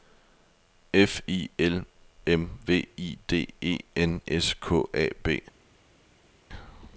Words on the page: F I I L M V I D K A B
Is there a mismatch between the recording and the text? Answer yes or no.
yes